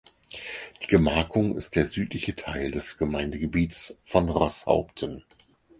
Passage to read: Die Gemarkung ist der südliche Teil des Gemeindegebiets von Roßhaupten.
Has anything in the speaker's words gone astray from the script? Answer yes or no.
no